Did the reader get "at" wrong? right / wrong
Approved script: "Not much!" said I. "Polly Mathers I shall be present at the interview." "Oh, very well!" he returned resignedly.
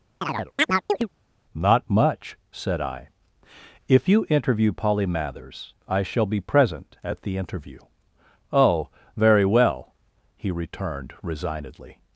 right